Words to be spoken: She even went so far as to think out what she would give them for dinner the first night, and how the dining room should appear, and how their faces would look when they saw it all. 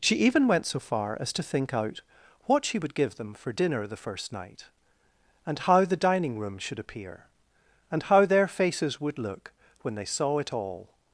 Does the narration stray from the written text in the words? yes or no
no